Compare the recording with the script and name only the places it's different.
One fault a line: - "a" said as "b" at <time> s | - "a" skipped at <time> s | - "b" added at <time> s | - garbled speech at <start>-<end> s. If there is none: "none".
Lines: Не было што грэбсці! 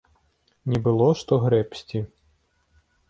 none